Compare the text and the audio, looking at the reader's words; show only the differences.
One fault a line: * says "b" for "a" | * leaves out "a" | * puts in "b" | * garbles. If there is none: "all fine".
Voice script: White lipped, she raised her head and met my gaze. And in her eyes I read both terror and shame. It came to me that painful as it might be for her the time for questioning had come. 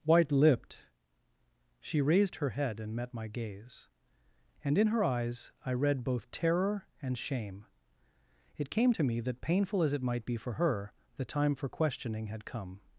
all fine